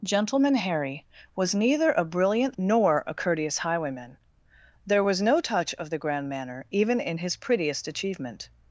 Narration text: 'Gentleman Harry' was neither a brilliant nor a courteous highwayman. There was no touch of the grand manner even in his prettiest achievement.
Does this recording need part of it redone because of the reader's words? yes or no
no